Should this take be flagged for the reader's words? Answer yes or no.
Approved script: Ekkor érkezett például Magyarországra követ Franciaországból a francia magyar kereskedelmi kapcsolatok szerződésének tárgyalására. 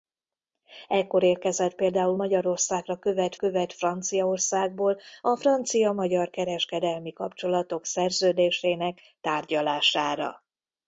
yes